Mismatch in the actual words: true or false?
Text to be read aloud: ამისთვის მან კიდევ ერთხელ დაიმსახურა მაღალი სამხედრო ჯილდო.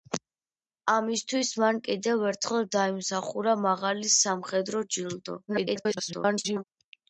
true